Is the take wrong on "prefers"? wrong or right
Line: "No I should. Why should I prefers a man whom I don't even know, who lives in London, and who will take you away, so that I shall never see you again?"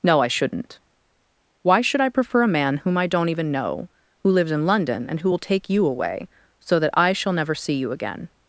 wrong